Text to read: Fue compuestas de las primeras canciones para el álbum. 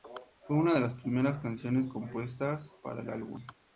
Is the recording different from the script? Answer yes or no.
yes